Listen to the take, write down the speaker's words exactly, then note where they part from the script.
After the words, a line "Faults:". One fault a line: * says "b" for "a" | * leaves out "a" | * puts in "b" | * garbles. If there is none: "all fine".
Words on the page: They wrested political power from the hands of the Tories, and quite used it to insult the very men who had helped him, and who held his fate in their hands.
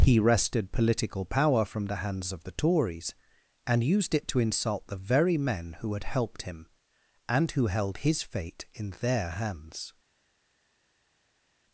He wrested political power from the hands of the Tories, and used it to insult the very men who had helped him, and who held his fate in their hands.
Faults:
* says "He" for "They"
* leaves out "quite"